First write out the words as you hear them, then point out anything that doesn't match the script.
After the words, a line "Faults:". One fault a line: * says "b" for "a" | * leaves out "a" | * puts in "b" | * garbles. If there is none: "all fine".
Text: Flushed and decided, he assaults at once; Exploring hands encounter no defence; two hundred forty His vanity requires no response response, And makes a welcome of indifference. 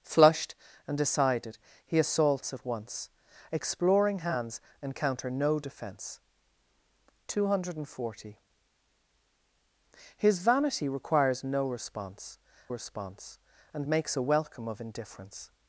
Flushed and decided, he assaults at once; Exploring hands encounter no defence; two hundred forty His vanity requires no response response, And makes a welcome of indifference.
Faults:
all fine